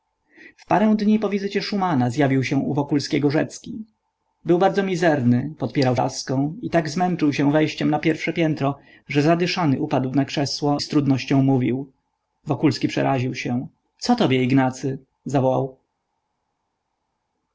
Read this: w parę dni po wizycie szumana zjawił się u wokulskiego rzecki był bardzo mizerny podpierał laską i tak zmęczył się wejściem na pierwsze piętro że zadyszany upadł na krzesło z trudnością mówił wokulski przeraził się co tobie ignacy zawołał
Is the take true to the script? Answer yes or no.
yes